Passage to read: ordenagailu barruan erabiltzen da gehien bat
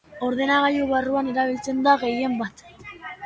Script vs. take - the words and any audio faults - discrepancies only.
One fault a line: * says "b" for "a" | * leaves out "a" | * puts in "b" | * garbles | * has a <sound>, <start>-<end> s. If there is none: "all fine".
all fine